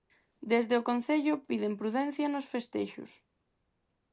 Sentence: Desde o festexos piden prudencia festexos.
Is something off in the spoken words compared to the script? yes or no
yes